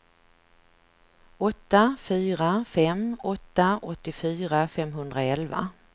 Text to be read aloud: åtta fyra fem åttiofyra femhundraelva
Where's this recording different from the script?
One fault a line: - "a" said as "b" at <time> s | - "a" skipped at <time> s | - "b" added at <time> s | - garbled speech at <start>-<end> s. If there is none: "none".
- "åtta" added at 3.2 s